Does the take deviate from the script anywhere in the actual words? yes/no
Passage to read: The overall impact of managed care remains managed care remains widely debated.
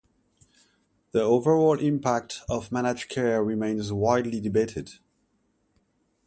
yes